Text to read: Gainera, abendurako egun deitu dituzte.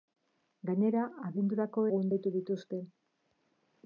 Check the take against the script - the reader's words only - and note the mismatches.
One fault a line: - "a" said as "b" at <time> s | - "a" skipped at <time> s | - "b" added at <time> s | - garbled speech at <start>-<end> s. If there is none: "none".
none